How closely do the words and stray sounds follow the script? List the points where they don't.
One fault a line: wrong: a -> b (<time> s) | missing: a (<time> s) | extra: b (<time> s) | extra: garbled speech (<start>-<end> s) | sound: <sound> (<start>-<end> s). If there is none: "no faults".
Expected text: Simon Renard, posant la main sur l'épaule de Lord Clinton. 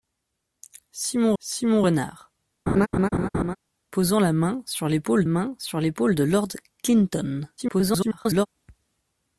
extra: simon (1.4 s)
sound: laugh (2.7-3.6 s)
extra: main sur l'épaule (5.3 s)
extra: garbled speech (7.6-8.5 s)